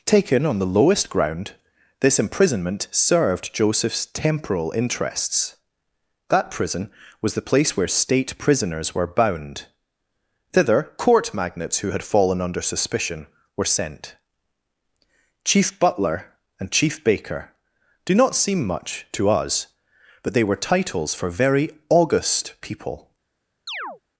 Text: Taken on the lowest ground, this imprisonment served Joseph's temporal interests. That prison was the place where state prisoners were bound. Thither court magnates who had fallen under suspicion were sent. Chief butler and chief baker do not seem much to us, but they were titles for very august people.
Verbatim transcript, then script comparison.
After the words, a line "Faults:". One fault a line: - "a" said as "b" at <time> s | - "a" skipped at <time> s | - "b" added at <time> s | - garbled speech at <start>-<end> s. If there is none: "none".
Taken on the lowest ground, this imprisonment served Joseph's temporal interests. That prison was the place where state prisoners were bound. Thither court magnates who had fallen under suspicion were sent. Chief butler and chief baker do not seem much to us, but they were titles for very august people.
Faults:
none